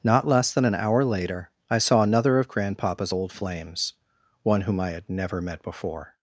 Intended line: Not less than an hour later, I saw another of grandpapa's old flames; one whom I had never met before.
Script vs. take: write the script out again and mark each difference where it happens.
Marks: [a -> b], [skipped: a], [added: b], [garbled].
Not less than an hour later, I saw another of grandpapa's old flames; one whom I had never met before.